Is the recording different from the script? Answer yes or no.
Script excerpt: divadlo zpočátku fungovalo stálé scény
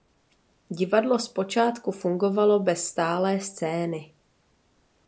yes